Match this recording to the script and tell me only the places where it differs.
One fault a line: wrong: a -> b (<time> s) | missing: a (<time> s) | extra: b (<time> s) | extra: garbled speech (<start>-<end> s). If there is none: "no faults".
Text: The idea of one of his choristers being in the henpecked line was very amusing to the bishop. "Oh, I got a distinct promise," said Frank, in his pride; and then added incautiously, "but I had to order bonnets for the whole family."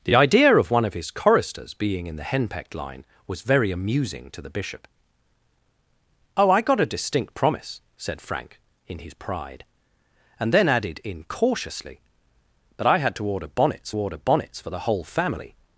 extra: order bonnets (14.0 s)